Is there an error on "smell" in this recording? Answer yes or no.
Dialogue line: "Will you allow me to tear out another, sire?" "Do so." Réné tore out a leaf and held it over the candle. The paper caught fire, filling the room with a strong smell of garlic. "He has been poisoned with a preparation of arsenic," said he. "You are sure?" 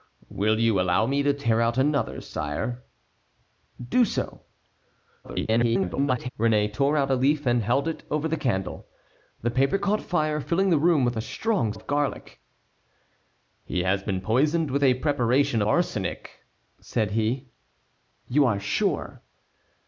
yes